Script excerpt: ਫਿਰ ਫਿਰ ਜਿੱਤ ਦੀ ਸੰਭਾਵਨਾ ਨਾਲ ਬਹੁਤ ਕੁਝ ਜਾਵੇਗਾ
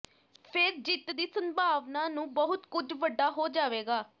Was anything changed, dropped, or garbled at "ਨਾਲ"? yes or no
yes